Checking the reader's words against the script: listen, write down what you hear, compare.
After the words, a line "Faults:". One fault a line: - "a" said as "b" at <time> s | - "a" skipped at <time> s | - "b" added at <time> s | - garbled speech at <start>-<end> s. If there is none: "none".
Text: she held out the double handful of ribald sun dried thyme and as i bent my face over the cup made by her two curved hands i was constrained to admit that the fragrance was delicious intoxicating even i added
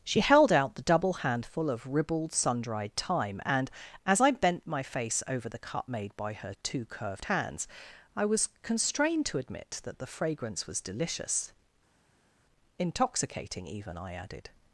she held out the double handful of ribald sun dried thyme and as i bent my face over the cup made by her two curved hands i was constrained to admit that the fragrance was delicious intoxicating even i added
Faults:
none